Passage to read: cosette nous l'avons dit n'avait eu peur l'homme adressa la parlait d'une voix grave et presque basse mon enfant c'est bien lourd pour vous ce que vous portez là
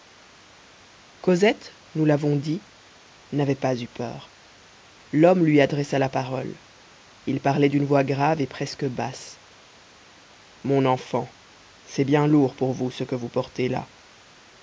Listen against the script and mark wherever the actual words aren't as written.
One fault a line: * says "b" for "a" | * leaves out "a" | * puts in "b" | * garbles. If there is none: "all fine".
* puts in "pas"
* puts in "lui"
* puts in "parole il"